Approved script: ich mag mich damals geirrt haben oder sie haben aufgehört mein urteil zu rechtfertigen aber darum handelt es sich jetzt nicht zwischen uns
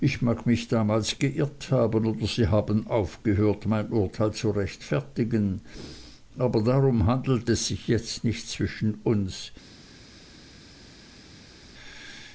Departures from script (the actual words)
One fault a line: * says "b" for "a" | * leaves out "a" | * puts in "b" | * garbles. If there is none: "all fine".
all fine